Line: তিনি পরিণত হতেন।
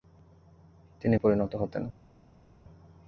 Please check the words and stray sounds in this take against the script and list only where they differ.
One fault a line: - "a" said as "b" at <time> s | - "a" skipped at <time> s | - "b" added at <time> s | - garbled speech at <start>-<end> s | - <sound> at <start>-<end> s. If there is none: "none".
none